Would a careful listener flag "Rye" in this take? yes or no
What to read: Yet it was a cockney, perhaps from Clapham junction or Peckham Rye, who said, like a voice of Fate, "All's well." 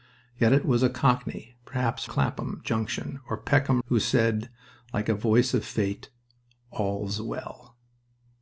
yes